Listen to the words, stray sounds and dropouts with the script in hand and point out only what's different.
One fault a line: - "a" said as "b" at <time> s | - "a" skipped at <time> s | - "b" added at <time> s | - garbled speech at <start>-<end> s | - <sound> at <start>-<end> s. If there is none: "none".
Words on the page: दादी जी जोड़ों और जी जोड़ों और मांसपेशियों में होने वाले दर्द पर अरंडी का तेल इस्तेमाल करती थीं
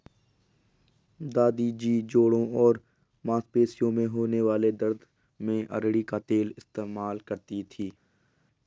- "जी जोड़ों और" skipped at 2.8 s
- "पर" said as "में" at 5.4 s